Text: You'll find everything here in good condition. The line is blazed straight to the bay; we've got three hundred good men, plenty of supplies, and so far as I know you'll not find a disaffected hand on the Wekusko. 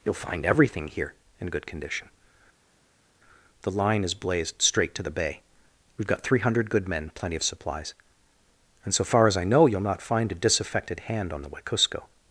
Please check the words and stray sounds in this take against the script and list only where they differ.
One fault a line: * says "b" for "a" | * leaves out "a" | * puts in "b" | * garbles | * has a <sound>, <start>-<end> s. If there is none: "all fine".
all fine